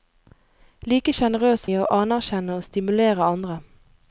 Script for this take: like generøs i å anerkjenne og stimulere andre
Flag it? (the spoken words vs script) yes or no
no